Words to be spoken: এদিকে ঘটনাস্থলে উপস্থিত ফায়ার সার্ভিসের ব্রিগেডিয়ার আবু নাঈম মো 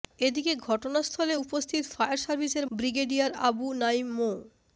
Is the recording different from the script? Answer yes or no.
no